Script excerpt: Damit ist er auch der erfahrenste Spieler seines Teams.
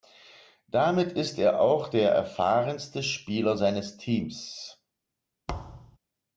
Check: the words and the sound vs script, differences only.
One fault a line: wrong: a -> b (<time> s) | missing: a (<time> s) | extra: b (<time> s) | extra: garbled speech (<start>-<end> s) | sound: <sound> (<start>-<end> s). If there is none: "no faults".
sound: thud (5.5-6.0 s)